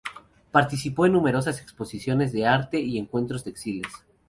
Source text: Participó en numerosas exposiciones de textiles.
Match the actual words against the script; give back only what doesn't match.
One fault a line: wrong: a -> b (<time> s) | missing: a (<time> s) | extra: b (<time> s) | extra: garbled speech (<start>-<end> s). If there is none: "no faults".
extra: arte y encuentros (2.5 s)